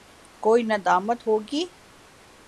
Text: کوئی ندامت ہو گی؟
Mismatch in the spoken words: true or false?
false